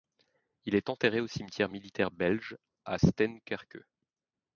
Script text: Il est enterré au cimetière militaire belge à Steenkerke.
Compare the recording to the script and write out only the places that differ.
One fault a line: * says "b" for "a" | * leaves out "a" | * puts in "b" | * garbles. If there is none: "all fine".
all fine